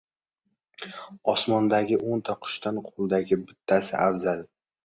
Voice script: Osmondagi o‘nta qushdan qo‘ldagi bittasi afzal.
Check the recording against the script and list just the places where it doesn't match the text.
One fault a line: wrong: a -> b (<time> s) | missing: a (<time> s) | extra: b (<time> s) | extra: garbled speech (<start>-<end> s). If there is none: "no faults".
no faults